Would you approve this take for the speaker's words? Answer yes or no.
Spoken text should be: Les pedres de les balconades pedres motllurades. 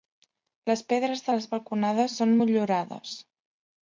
no